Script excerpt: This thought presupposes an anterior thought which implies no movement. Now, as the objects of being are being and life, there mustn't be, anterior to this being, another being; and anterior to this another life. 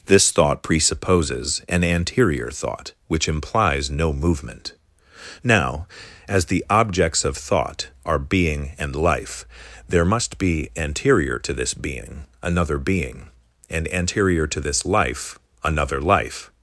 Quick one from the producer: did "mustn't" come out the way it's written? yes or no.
no